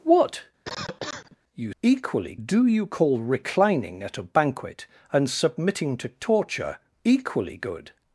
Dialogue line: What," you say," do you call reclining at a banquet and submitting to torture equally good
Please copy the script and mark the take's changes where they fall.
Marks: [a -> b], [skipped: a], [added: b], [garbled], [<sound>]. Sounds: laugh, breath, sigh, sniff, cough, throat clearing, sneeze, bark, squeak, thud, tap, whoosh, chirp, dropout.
What," [cough] you [say," -> equally] do you call reclining at a banquet and submitting to torture equally good